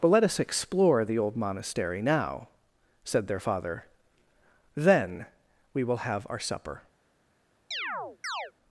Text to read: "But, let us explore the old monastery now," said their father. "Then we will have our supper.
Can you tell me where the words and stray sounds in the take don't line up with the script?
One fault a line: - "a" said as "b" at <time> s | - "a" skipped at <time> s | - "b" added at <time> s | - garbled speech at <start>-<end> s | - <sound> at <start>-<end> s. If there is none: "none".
- chirp at 7.7-8.5 s